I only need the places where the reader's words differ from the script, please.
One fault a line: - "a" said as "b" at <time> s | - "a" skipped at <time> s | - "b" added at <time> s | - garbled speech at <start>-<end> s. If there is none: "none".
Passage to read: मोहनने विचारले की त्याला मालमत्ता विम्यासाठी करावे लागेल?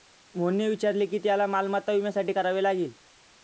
none